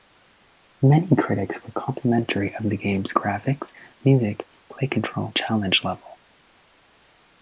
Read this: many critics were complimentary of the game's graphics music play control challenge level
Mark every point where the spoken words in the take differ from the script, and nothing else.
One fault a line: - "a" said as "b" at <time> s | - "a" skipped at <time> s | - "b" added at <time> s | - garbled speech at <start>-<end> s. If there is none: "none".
none